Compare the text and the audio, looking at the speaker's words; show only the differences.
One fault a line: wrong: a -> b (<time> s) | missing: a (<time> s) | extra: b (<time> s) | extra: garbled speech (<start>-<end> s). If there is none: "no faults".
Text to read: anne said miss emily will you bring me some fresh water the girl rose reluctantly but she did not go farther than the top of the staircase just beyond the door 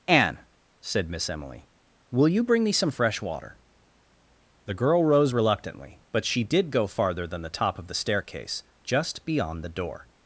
missing: not (6.7 s)